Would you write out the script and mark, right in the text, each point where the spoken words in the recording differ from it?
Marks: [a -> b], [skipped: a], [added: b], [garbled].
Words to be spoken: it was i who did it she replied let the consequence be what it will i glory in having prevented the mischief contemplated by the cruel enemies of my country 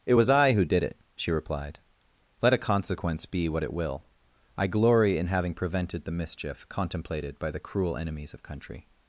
it was i who did it she replied let [the -> a] consequence be what it will i glory in having prevented the mischief contemplated by the cruel enemies of [skipped: my] country